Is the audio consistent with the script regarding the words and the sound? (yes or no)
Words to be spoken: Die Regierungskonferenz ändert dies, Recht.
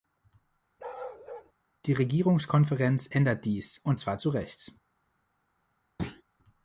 no